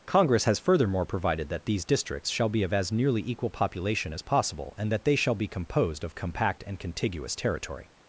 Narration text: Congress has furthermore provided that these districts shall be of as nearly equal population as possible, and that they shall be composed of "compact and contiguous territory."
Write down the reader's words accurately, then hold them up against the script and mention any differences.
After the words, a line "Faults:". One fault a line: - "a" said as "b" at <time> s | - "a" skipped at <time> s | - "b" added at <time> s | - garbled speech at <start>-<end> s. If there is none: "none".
Congress has furthermore provided that these districts shall be of as nearly equal population as possible, and that they shall be composed of "compact and contiguous territory."
Faults:
none